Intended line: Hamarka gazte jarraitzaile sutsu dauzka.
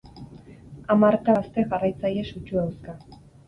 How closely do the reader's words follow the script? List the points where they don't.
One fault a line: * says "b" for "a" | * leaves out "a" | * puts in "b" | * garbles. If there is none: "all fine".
all fine